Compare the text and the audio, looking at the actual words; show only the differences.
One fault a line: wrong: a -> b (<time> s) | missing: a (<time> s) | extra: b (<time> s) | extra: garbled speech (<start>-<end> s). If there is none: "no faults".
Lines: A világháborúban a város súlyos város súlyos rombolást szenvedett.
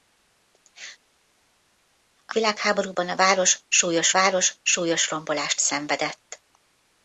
no faults